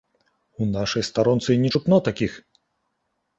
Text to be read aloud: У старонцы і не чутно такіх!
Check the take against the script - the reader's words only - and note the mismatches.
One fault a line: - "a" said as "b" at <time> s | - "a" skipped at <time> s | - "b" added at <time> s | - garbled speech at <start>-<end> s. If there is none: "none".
- "нашай" added at 0.8 s